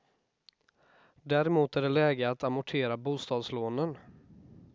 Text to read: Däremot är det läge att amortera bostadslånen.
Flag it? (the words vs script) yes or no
no